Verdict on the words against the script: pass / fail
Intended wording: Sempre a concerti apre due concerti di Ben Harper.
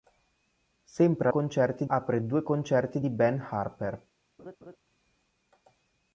pass